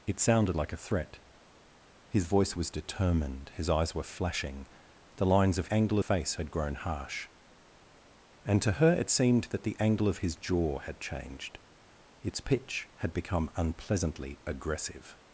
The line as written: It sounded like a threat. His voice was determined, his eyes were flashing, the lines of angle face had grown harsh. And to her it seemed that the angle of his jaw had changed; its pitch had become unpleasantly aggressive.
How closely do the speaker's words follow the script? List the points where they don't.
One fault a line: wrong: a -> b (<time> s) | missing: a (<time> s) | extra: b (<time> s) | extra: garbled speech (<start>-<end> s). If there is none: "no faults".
no faults